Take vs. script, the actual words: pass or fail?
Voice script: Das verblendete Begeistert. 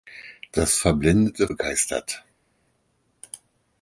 pass